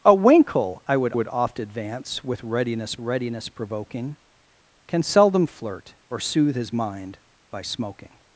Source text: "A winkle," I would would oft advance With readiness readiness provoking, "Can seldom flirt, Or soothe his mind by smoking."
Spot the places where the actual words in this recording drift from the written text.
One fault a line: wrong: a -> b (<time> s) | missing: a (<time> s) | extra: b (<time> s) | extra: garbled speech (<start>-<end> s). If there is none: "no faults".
no faults